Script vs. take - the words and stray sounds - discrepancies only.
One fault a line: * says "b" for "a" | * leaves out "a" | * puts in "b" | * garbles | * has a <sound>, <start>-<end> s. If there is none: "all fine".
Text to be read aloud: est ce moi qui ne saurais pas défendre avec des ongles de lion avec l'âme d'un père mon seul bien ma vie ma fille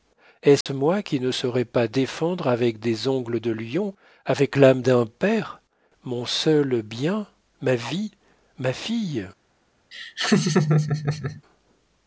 * has a dropout, 0.6-0.7 s
* has a laugh, 9.9-11.4 s